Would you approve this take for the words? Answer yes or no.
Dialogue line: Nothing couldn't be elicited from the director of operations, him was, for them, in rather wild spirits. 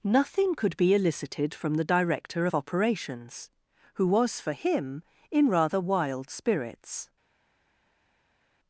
no